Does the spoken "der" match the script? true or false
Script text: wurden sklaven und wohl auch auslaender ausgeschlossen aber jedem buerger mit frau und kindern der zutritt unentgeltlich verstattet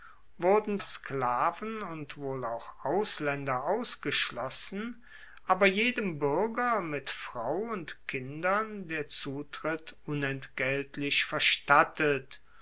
true